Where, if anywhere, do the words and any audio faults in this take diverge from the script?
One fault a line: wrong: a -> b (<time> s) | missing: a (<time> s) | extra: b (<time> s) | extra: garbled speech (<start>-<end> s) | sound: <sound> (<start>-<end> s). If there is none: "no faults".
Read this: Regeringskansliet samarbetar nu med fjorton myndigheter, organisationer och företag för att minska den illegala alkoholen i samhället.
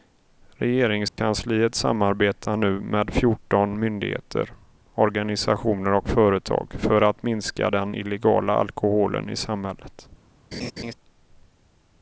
sound: dropout (1.1-1.2 s)
sound: laugh (10.5-10.9 s)